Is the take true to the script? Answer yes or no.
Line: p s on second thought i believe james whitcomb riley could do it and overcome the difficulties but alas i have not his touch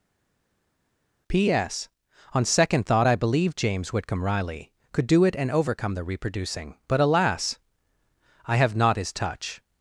no